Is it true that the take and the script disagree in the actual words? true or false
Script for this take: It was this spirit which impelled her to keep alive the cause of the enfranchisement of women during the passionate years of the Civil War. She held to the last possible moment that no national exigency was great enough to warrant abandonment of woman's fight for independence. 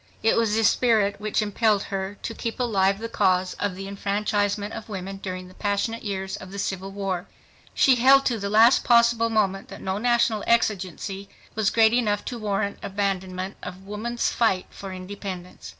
false